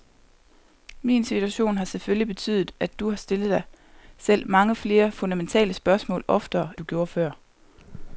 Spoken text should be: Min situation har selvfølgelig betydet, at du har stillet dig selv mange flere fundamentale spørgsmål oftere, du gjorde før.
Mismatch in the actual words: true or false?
false